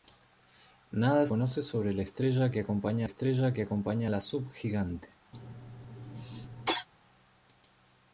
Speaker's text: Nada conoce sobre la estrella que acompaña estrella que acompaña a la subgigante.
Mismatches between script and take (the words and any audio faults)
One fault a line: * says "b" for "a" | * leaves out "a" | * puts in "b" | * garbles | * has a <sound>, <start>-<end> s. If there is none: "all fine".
* has a cough, 5.3-6.9 s